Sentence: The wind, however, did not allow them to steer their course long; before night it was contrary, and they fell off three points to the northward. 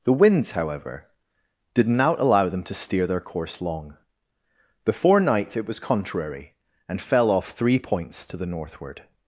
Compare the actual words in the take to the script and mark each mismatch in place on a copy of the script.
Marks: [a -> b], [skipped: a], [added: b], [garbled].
The [wind, -> winds] however, did not allow them to steer their course long; before night it was contrary, and [skipped: they] fell off three points to the northward.